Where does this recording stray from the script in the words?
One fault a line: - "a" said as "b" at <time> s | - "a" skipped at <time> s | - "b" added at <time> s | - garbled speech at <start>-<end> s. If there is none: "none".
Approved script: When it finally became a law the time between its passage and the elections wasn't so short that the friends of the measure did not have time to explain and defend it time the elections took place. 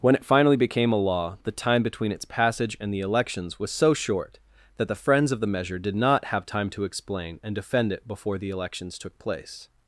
- "wasn't" said as "was" at 3.6 s
- "time" said as "before" at 8.1 s